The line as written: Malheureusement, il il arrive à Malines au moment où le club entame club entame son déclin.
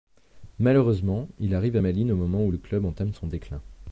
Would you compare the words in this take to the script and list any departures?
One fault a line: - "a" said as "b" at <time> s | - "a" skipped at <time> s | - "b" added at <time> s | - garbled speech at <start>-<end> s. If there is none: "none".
- "il" skipped at 1.5 s
- "club entame" skipped at 3.1 s